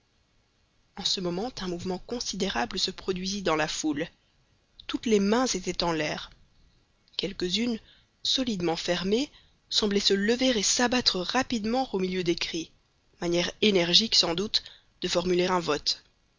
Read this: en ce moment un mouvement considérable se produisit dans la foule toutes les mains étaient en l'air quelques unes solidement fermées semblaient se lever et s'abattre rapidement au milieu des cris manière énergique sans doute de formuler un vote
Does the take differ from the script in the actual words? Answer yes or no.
no